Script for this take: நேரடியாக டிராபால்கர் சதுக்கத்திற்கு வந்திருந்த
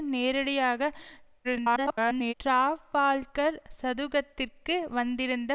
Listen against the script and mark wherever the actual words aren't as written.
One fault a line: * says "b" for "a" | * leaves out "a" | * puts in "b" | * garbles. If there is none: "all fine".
* garbles